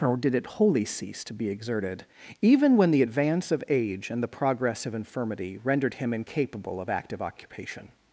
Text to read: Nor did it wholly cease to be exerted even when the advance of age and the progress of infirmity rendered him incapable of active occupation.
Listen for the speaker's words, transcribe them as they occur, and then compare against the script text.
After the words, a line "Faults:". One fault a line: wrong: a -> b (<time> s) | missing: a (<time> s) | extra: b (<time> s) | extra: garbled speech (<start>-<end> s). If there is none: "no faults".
Nor did it wholly cease to be exerted even when the advance of age and the progress of infirmity rendered him incapable of active occupation.
Faults:
no faults